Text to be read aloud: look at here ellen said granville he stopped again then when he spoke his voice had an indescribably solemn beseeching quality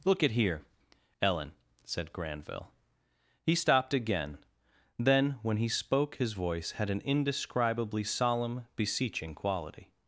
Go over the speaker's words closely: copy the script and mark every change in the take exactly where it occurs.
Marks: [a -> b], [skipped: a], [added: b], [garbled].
look at here ellen said granville he stopped again then when he spoke his voice had an indescribably solemn beseeching quality